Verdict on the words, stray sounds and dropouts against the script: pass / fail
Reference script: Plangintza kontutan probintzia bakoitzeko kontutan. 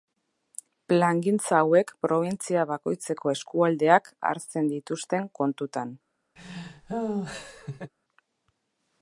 fail